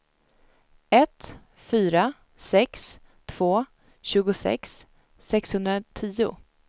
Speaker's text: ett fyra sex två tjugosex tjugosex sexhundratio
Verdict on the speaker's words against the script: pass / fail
fail